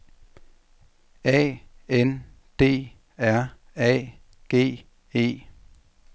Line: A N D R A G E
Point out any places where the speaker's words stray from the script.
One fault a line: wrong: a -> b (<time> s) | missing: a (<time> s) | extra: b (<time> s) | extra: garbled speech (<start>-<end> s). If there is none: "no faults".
no faults